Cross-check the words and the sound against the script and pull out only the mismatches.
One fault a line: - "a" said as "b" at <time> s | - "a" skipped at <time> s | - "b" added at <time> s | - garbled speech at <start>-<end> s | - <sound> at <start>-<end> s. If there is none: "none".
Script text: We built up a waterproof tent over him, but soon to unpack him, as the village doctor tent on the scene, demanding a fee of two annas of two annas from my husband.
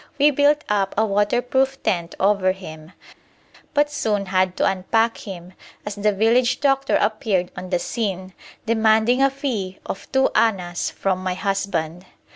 - "had" added at 4.3 s
- "tent" said as "appeared" at 7.0 s
- "of two annas" skipped at 10.9 s